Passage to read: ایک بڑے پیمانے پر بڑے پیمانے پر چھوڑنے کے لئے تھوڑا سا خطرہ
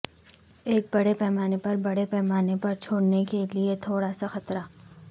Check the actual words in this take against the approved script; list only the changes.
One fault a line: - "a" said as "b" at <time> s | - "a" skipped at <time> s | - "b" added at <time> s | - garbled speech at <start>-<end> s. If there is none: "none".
none